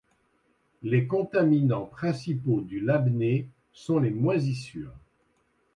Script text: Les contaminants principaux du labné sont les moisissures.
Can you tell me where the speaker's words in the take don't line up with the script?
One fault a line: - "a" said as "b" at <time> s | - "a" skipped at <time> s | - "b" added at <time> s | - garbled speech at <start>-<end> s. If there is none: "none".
none